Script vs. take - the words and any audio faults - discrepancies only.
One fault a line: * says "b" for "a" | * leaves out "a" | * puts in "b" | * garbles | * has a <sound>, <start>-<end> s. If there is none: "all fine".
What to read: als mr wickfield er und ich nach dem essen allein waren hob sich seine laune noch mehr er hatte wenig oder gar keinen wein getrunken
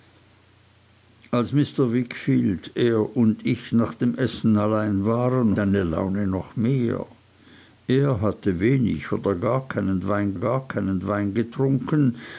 * leaves out "hob sich"
* puts in "gar keinen wein"